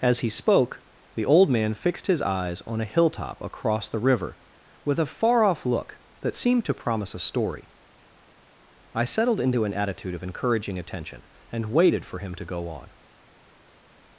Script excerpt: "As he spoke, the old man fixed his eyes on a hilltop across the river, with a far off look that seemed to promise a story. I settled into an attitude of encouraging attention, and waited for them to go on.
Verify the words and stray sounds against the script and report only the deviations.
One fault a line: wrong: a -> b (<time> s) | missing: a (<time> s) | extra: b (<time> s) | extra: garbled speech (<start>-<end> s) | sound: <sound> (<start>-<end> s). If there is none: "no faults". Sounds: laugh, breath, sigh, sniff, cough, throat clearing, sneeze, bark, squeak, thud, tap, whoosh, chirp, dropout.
wrong: them -> him (12.2 s)